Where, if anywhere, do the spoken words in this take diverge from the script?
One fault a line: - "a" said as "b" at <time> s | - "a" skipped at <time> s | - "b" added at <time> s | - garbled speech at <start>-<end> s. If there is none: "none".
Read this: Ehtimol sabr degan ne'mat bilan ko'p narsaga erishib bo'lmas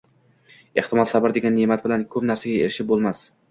none